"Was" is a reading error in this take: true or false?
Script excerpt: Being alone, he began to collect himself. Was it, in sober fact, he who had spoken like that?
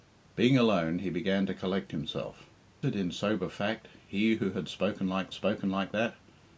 true